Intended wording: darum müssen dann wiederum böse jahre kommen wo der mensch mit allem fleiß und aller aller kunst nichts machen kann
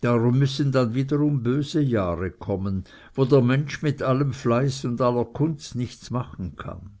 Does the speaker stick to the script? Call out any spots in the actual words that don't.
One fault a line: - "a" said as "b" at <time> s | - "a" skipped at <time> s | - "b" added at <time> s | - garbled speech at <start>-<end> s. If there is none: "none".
- "aller" skipped at 5.2 s